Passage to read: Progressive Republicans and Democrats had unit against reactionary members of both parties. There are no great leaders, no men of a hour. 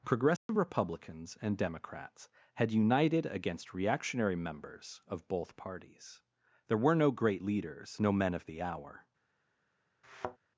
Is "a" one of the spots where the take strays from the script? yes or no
yes